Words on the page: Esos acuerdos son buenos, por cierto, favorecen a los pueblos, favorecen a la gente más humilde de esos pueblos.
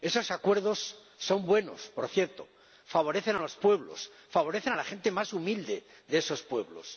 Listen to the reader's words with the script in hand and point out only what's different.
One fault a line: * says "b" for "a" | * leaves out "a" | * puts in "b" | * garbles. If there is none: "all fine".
all fine